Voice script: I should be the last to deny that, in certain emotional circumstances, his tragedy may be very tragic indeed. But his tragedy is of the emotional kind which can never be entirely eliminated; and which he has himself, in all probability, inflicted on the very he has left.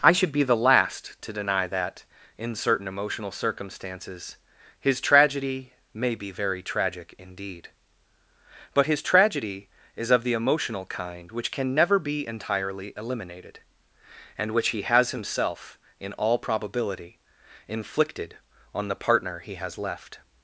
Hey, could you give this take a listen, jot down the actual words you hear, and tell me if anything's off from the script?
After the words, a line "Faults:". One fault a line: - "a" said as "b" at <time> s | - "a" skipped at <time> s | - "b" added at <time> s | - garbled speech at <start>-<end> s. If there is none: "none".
I should be the last to deny that, in certain emotional circumstances, his tragedy may be very tragic indeed. But his tragedy is of the emotional kind which can never be entirely eliminated; and which he has himself, in all probability, inflicted on the partner he has left.
Faults:
- "very" said as "partner" at 19.0 s